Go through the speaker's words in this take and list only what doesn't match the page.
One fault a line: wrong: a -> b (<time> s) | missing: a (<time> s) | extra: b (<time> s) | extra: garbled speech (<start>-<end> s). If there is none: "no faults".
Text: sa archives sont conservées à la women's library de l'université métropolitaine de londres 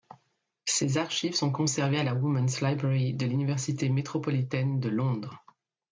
wrong: sa -> ses (0.7 s)